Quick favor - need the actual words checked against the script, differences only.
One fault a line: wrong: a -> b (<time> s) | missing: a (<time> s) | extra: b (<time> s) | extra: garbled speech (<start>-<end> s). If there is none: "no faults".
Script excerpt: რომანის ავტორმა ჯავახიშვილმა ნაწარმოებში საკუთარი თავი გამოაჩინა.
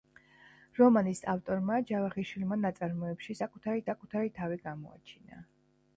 extra: საკუთარი (3.9 s)